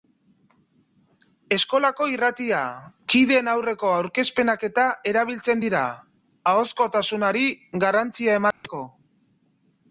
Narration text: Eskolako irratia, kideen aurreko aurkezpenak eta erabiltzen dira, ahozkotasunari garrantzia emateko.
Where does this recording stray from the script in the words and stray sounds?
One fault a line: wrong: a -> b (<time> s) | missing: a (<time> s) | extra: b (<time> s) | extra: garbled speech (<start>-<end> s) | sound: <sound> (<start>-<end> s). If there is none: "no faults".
sound: dropout (8.5-8.6 s)